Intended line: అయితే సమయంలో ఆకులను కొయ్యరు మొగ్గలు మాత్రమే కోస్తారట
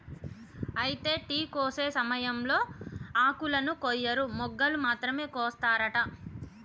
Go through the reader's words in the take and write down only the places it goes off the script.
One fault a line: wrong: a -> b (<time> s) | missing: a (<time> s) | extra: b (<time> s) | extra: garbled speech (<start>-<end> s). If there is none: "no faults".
extra: టీ కోసే (1.3 s)